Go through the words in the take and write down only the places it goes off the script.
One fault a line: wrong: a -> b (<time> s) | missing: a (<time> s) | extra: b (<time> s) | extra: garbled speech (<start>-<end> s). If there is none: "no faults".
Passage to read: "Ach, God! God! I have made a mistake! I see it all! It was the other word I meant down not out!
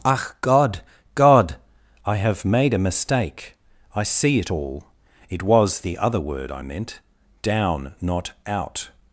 no faults